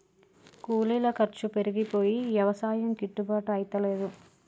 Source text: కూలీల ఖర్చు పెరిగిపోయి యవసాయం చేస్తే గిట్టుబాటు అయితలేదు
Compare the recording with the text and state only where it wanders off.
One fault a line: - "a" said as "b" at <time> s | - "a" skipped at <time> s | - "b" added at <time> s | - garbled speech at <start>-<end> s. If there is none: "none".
- "చేస్తే" skipped at 2.9 s